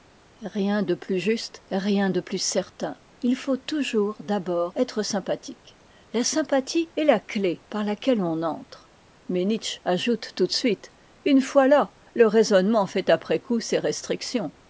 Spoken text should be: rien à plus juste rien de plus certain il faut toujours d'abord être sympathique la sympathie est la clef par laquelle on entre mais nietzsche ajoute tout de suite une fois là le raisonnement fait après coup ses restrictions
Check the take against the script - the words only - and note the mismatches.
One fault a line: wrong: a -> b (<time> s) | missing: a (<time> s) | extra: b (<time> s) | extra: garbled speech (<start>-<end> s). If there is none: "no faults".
wrong: à -> de (0.8 s)